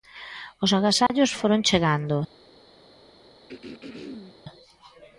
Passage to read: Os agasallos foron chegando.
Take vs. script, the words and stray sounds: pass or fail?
fail